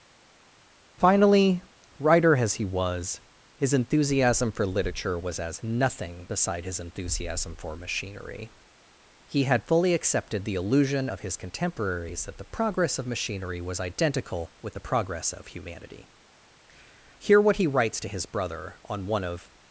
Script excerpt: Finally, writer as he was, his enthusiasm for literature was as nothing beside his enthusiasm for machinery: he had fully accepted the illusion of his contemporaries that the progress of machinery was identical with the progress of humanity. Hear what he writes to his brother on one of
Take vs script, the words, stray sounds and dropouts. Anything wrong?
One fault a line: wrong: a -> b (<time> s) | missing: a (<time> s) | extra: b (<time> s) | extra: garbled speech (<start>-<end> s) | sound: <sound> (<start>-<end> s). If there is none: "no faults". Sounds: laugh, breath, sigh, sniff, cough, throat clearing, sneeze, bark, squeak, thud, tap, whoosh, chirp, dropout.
no faults